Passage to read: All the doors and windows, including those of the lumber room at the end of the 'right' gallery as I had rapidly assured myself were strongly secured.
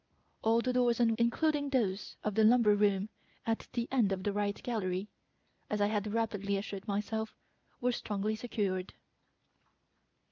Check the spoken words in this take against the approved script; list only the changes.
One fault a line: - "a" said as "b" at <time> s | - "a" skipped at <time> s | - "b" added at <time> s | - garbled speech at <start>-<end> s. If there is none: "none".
- "windows" skipped at 1.1 s